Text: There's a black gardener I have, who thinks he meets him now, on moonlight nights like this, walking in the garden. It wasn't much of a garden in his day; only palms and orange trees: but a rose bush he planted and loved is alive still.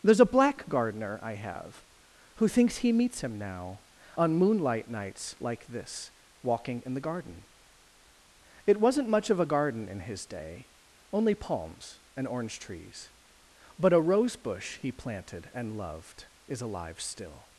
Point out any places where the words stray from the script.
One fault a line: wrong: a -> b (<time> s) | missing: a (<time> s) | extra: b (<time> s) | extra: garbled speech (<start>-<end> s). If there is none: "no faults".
no faults